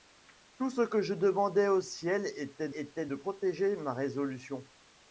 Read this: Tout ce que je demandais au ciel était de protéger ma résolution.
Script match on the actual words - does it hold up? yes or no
no